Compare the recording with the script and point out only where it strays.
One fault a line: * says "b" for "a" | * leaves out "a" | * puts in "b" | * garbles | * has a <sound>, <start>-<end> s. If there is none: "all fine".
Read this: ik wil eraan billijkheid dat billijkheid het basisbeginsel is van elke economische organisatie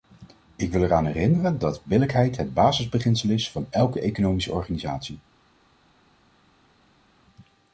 * says "herinneren" for "billijkheid"